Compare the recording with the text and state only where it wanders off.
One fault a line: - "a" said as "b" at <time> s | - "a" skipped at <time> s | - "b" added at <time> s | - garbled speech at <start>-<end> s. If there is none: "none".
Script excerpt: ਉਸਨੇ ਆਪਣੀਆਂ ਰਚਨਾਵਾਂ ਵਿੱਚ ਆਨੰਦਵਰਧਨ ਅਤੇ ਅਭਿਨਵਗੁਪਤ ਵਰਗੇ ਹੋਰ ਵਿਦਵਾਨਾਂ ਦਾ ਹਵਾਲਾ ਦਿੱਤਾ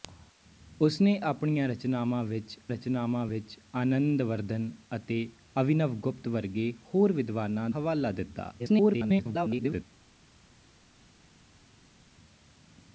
- "ਰਚਨਾਵਾਂ ਵਿੱਚ" added at 2.7 s
- "ਦਾ" skipped at 7.7 s
- garbled speech at 8.6-9.8 s